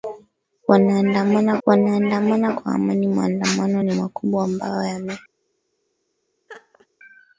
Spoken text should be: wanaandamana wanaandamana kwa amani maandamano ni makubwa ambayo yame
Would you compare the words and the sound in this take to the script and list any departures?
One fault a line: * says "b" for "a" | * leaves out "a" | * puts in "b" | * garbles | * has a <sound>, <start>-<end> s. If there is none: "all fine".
* has a laugh, 6.5-6.9 s